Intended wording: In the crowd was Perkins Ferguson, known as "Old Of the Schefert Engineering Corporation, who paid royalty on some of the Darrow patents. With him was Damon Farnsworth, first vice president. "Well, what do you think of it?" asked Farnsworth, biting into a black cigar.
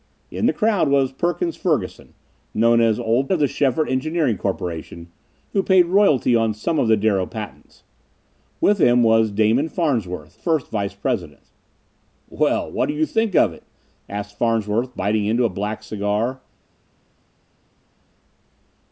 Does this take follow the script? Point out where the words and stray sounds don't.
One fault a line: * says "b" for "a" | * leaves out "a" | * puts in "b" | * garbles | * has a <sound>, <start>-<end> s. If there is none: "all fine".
all fine